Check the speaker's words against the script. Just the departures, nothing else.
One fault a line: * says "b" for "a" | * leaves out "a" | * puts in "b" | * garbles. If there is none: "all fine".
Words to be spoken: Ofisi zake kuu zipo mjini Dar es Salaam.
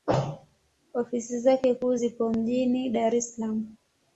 all fine